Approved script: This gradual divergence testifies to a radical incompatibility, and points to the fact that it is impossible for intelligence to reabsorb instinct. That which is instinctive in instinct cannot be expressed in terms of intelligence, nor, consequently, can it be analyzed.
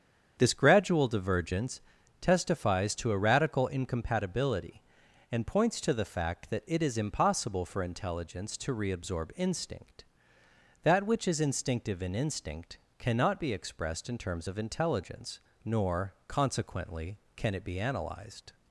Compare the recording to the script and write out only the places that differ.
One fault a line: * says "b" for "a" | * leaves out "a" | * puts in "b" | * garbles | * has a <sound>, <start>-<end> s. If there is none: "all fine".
all fine